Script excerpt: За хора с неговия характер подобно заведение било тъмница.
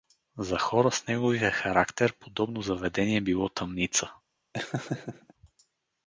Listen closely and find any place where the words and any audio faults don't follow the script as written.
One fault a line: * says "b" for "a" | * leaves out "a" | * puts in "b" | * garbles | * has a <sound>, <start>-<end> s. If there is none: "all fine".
* has a laugh, 4.5-5.3 s